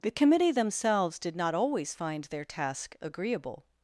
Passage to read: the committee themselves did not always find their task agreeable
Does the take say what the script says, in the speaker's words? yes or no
yes